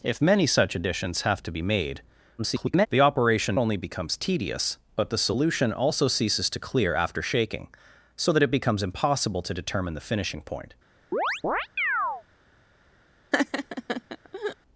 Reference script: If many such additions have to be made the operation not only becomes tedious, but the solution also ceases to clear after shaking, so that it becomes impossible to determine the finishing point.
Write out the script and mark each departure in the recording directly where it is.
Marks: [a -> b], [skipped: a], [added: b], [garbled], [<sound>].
If many such additions have to be made [garbled] the operation [skipped: not] only becomes tedious, but the solution also ceases to clear after shaking, so that it becomes impossible to determine the finishing point. [chirp] [laugh]